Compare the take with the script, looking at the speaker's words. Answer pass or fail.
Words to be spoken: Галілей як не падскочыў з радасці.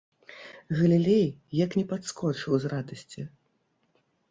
pass